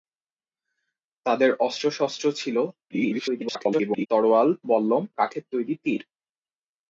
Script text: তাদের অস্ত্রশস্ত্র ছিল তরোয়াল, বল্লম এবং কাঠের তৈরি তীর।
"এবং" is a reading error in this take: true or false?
true